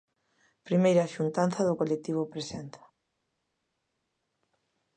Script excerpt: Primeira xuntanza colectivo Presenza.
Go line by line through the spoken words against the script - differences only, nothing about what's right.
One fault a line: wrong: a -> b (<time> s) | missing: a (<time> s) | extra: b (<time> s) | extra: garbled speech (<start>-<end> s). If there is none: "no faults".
extra: do (1.7 s)